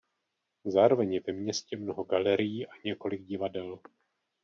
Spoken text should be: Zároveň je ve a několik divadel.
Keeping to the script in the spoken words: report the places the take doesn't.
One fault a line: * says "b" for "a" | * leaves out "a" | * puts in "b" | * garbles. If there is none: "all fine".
* puts in "městě mnoho galerií"